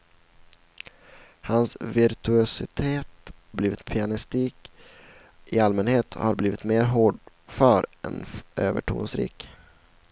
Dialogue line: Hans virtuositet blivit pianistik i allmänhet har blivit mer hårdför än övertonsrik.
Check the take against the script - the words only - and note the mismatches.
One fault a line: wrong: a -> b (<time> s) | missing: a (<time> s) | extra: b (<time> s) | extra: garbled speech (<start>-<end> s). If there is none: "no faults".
no faults